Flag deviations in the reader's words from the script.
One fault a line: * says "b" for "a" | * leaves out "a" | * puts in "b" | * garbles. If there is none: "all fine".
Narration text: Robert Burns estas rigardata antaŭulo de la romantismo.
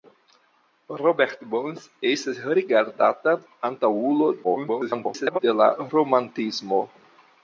* garbles